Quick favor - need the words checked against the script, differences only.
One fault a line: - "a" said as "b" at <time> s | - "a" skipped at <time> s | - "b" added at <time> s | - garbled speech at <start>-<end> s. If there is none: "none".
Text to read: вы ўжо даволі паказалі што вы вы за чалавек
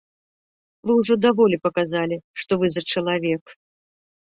- "вы" skipped at 2.8 s